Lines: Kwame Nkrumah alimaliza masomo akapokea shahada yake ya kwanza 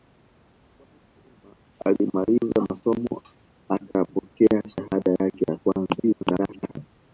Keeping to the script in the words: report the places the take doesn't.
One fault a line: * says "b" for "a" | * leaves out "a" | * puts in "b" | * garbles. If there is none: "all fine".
* garbles